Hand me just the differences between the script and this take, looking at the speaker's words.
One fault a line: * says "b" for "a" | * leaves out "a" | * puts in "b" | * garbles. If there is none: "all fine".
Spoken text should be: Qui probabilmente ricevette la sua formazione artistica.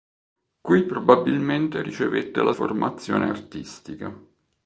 * leaves out "sua"